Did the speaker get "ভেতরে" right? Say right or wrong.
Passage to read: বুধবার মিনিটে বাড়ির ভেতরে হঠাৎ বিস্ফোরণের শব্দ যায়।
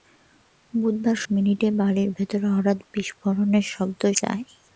right